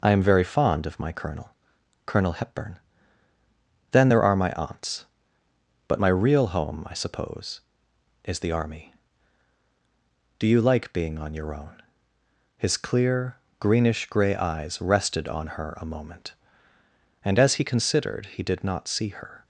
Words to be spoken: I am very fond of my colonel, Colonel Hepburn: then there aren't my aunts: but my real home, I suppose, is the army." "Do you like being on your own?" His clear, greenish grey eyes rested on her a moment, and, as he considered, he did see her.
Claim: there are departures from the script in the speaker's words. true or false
true